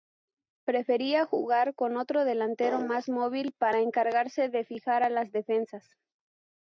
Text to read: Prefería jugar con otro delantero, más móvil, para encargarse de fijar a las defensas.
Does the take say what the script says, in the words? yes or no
yes